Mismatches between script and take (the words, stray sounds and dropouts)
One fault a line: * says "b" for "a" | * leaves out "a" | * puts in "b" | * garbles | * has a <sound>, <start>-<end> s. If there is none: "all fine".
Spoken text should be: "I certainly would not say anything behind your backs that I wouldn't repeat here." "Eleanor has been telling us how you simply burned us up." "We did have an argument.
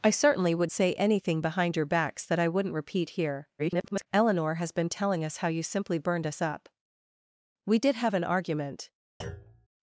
* leaves out "not"
* garbles
* has a thud, 9.2-9.7 s